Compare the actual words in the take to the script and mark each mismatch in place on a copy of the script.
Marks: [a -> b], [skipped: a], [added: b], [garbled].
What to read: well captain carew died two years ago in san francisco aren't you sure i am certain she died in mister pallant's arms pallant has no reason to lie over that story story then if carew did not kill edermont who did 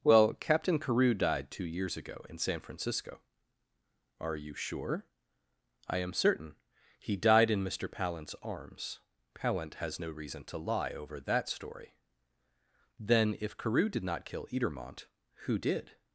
well captain carew died two years ago in san francisco [aren't -> are] you sure i am certain [she -> he] died in mister pallant's arms pallant has no reason to lie over that story [skipped: story] then if carew did not kill edermont who did